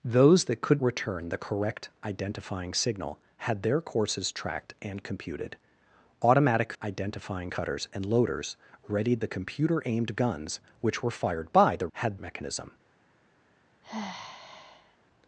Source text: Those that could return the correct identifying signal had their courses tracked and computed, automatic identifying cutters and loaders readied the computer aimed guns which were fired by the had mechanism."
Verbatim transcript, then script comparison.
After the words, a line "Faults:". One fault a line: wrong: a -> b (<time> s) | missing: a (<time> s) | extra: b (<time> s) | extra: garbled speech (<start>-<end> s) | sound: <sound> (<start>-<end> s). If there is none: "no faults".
Those that could return the correct identifying signal had their courses tracked and computed, automatic identifying cutters and loaders readied the computer aimed guns which were fired by the had mechanism."
Faults:
sound: sigh (13.8-15.0 s)